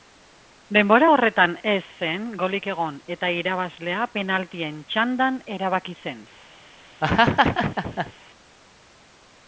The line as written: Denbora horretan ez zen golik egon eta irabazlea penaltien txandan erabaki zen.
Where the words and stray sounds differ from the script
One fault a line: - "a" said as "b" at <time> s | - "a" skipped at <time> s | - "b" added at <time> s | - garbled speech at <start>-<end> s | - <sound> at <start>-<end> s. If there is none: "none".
- laugh at 7.0-8.1 s